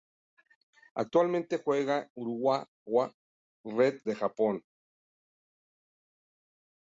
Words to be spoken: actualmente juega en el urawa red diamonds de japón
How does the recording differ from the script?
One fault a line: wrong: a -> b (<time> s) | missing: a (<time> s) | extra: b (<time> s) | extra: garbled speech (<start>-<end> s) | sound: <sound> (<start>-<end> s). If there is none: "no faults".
missing: en el (2.1 s)
missing: diamonds (4.0 s)